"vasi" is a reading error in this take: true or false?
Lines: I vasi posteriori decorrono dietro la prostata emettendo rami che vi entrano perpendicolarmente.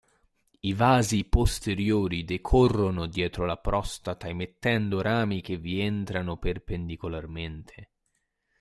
false